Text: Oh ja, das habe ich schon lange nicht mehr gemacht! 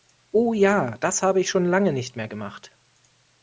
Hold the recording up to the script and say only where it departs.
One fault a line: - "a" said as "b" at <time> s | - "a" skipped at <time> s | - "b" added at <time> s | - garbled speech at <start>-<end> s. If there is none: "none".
none